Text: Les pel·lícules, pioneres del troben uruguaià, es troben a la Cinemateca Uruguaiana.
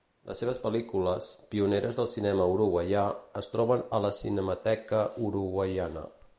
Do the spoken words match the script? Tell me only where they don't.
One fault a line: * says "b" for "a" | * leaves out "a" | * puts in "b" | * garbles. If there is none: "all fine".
* puts in "seves"
* says "cinema" for "troben"